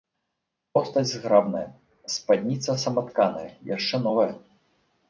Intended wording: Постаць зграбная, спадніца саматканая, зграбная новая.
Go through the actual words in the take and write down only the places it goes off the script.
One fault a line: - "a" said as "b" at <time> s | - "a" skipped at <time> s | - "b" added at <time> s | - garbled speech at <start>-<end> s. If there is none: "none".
- "зграбная" said as "яшчэ" at 3.8 s